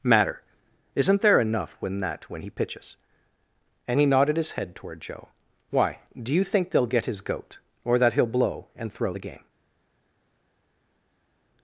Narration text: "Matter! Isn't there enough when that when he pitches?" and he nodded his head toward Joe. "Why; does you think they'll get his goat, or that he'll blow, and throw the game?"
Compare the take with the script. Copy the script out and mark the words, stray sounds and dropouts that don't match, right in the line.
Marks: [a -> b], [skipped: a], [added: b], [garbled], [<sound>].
"Matter! Isn't there enough when that when he pitches?" and he nodded his head toward Joe. "Why; [does -> do] you think they'll get his goat, or that he'll blow, and throw the game?"